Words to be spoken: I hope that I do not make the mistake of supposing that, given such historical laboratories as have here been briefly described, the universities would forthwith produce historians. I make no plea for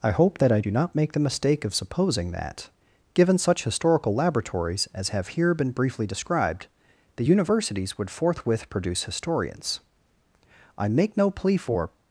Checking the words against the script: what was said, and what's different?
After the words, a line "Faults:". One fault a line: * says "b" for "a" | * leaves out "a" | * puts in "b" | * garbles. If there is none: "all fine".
I hope that I do not make the mistake of supposing that, given such historical laboratories as have here been briefly described, the universities would forthwith produce historians. I make no plea for
Faults:
all fine